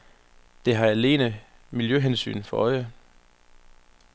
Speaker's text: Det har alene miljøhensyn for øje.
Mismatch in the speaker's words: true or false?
false